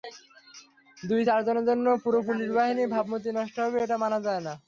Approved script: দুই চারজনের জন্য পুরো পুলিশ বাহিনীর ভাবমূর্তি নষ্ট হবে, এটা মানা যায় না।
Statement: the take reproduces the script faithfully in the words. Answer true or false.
true